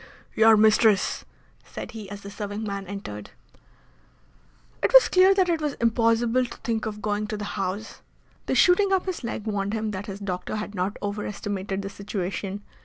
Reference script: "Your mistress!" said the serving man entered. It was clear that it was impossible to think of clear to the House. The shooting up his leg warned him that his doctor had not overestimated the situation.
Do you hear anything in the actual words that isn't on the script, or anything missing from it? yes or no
yes